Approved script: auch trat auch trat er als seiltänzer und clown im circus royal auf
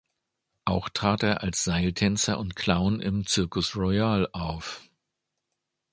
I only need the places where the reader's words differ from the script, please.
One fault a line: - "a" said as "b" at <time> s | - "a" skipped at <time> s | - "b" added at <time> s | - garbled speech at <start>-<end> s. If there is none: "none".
- "auch trat" skipped at 1.2 s